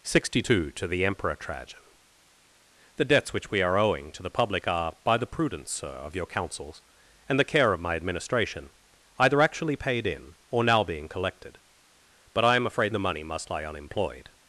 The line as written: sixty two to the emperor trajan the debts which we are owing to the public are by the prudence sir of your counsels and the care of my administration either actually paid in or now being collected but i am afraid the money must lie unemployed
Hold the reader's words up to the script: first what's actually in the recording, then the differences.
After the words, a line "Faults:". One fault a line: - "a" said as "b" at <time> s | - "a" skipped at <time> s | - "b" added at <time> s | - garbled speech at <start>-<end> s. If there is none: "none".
sixty two to the emperor trajan the debts which we are owing to the public are by the prudence sir of your counsels and the care of my administration either actually paid in or now being collected but i am afraid the money must lie unemployed
Faults:
none